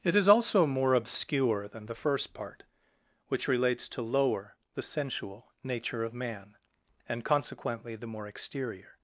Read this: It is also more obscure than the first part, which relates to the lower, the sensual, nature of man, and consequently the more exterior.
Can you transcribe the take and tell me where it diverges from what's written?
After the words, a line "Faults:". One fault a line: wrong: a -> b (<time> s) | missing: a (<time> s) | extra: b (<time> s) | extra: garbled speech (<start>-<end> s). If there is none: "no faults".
It is also more obscure than the first part, which relates to lower, the sensual, nature of man, and consequently the more exterior.
Faults:
missing: the (4.0 s)